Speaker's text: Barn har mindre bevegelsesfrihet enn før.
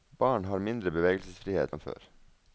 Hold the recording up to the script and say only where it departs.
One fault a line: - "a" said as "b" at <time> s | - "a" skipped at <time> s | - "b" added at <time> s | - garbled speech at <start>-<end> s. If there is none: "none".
none